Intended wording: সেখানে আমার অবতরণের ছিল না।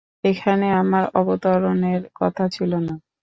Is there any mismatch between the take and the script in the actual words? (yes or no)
yes